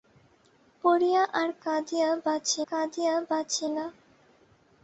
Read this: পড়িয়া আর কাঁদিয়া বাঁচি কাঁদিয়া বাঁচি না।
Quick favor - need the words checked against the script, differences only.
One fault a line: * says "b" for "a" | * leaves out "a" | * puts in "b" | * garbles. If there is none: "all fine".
all fine